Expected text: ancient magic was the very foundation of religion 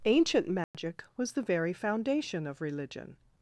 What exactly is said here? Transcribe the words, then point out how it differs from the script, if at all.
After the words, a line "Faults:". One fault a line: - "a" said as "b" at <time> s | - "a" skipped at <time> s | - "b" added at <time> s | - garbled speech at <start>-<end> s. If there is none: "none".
ancient magic was the very foundation of religion
Faults:
none